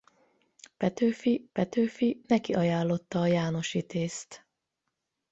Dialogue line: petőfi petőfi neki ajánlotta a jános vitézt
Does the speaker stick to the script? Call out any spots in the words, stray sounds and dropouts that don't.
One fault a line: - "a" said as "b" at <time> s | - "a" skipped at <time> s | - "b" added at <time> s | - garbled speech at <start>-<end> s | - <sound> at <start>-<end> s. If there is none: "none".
none